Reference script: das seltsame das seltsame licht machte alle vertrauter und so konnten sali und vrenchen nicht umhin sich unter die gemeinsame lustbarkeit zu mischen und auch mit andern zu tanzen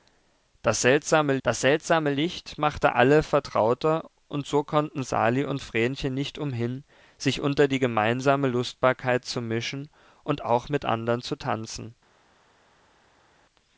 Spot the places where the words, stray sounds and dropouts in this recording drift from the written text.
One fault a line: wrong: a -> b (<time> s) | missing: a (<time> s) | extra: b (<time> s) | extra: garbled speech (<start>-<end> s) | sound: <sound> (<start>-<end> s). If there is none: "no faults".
no faults